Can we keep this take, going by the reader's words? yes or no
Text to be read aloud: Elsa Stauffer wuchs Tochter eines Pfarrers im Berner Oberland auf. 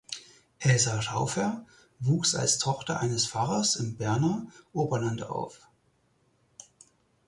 no